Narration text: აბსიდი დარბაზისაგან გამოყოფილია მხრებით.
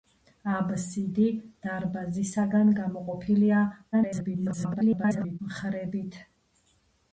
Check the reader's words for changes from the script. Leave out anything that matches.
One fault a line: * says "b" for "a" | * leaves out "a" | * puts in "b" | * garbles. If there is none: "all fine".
* garbles